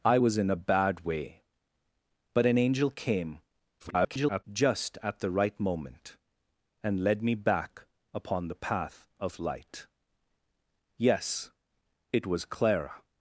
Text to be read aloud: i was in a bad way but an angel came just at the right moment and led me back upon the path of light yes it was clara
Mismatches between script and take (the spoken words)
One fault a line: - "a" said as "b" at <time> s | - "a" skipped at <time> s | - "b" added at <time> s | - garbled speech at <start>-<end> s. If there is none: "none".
- garbled speech at 3.8-4.4 s